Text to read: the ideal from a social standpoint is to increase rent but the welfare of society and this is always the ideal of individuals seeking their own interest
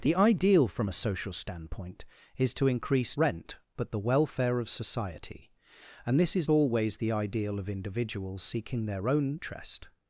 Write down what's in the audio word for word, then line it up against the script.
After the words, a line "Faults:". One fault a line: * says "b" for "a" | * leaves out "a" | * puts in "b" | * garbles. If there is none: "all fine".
the ideal from a social standpoint is to increase rent but the welfare of society and this is always the ideal of individuals seeking their own interest
Faults:
all fine